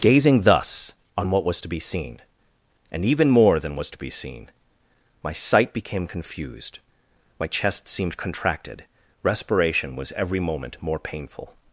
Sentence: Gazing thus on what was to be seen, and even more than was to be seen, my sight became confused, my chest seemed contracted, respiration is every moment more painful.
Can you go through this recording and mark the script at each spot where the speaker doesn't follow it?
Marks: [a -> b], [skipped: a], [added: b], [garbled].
Gazing thus on what was to be seen, and even more than was to be seen, my sight became confused, my chest seemed contracted, respiration [is -> was] every moment more painful.